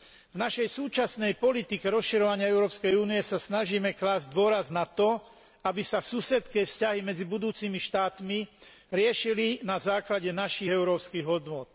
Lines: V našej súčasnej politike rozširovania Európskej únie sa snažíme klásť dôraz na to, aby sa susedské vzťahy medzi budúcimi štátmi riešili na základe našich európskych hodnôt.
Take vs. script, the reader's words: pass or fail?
pass